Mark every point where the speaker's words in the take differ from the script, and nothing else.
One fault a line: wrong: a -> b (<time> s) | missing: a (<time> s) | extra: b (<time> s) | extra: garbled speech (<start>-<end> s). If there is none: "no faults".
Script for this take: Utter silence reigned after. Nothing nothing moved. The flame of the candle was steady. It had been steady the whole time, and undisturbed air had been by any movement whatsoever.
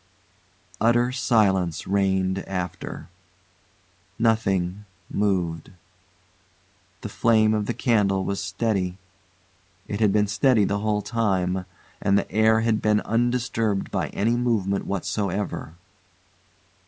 missing: nothing (4.8 s)
wrong: undisturbed -> the (12.2 s)
extra: undisturbed (13.0 s)